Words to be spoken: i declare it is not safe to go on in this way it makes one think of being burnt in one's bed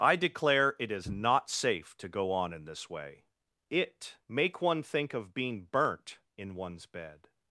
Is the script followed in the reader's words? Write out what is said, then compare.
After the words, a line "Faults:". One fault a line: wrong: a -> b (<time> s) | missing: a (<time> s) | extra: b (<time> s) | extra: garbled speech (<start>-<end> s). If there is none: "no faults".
i declare it is not safe to go on in this way it make one think of being burnt in one's bed
Faults:
wrong: makes -> make (4.3 s)